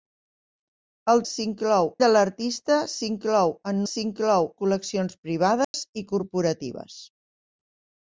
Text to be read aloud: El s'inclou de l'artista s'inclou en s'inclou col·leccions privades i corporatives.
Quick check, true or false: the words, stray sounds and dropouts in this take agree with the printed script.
false